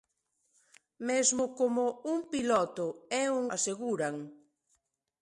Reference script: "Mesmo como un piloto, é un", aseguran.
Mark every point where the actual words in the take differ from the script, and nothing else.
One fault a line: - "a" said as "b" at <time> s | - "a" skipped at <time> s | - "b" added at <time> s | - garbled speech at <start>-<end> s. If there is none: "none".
none